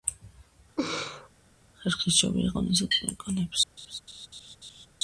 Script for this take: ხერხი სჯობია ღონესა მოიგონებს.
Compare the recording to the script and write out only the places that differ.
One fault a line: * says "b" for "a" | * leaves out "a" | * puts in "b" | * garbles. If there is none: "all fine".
all fine